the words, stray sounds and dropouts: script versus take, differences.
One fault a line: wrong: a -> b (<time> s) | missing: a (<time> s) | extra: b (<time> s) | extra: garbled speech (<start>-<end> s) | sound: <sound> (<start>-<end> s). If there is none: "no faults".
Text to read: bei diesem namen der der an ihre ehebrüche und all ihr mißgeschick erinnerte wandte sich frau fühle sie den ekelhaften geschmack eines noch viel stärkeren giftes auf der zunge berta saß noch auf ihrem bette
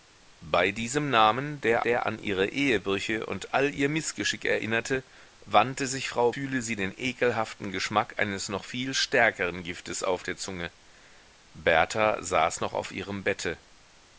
no faults